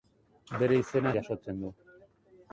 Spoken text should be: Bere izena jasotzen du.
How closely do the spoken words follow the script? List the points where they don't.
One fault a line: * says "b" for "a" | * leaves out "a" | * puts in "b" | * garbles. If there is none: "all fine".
all fine